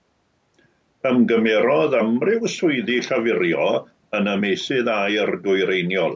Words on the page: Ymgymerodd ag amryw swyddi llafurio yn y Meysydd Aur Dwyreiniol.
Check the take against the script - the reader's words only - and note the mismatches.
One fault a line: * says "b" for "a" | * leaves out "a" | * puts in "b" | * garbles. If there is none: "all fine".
* leaves out "ag"